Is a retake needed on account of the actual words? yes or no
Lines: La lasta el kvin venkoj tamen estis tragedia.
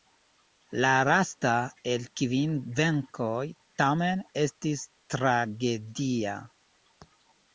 no